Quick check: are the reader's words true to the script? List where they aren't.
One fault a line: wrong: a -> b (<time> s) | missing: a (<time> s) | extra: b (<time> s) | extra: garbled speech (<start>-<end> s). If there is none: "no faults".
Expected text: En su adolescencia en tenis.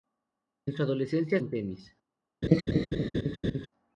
no faults